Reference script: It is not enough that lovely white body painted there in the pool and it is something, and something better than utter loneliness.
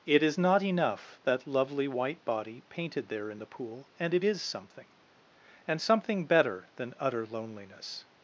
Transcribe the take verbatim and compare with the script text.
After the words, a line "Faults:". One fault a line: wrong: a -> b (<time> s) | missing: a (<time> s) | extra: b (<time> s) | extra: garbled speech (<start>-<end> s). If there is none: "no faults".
It is not enough that lovely white body painted there in the pool and it is something, and something better than utter loneliness.
Faults:
no faults